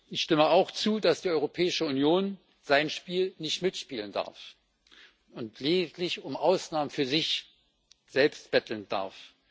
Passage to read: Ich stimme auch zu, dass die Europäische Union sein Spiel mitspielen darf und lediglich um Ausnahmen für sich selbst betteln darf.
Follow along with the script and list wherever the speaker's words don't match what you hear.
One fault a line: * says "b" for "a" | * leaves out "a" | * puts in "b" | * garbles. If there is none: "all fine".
* puts in "nicht"